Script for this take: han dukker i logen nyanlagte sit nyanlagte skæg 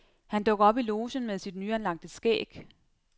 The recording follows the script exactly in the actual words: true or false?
false